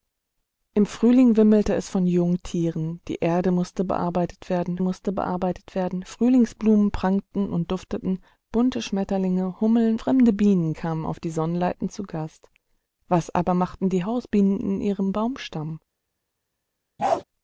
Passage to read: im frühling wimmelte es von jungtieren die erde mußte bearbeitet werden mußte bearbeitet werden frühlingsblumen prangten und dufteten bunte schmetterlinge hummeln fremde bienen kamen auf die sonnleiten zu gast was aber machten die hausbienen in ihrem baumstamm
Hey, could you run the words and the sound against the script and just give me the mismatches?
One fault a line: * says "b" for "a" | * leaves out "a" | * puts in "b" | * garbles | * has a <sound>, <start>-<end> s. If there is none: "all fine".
* has a bark, 17.0-17.2 s